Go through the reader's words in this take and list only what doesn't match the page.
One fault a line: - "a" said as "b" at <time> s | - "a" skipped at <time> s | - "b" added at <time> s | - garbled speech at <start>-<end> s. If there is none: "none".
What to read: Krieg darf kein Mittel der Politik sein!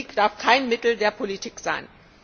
none